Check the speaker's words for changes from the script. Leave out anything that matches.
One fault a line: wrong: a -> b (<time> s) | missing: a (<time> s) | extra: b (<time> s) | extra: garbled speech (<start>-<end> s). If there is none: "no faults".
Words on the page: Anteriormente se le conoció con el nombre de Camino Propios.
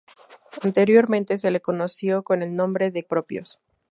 missing: Camino (3.0 s)